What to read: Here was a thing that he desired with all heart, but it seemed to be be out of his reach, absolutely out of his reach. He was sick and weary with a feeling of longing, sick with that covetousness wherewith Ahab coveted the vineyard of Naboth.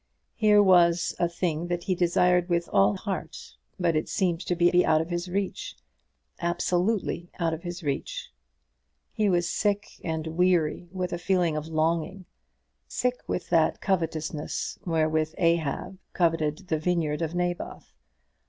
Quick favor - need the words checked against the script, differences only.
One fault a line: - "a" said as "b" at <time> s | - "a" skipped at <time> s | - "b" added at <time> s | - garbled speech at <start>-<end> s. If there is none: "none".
none